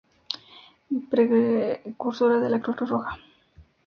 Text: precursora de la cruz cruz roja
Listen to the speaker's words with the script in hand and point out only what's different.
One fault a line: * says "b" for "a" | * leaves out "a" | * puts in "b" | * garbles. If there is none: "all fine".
all fine